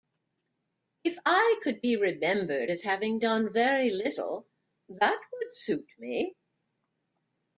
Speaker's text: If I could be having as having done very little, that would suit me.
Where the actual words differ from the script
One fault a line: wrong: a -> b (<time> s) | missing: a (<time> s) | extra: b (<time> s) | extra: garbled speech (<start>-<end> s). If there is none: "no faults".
wrong: having -> remembered (1.9 s)